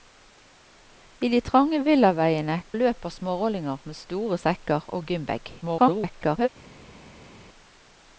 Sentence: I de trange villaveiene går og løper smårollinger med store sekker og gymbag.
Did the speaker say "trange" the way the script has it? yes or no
yes